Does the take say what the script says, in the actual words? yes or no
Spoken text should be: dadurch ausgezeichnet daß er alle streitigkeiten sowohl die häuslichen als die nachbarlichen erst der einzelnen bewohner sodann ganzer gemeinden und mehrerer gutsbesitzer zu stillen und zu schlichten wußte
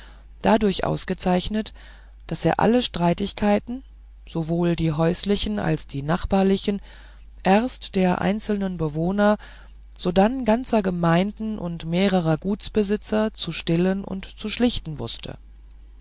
yes